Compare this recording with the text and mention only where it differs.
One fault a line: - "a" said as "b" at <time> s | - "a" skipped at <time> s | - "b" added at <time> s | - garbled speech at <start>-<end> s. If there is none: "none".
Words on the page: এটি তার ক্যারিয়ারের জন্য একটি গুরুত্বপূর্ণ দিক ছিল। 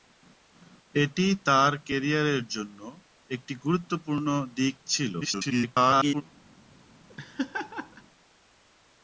- garbled speech at 5.2-6.2 s